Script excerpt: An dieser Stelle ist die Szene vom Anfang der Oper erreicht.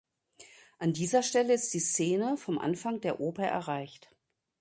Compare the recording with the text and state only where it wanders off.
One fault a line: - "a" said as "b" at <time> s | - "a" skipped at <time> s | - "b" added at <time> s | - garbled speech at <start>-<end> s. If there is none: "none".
none